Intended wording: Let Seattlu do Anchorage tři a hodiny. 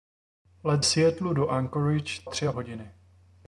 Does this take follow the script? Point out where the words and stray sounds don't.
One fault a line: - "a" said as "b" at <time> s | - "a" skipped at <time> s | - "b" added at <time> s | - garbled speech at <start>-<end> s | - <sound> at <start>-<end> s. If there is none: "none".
none